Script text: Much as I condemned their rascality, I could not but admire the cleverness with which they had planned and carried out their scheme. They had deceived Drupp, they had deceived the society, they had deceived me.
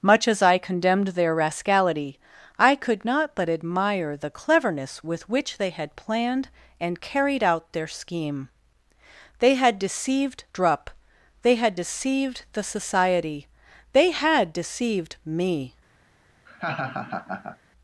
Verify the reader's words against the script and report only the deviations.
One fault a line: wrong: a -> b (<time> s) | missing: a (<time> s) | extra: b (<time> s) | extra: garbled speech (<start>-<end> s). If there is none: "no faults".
no faults